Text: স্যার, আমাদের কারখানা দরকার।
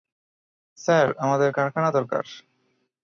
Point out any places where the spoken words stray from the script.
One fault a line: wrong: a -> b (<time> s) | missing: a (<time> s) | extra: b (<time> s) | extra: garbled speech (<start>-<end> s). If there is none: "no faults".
no faults